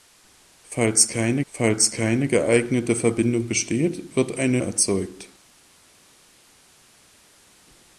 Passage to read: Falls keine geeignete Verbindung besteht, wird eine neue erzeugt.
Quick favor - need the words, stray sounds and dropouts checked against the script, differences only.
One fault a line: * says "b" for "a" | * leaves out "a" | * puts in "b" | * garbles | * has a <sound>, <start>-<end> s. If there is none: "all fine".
* puts in "falls keine"
* leaves out "neue"